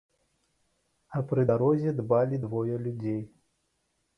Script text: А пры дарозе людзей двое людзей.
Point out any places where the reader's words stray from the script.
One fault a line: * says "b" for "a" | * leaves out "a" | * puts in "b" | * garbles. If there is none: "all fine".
* says "дбалі" for "людзей"